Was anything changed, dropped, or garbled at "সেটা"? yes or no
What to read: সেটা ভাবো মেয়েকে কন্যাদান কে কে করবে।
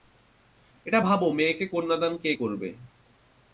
yes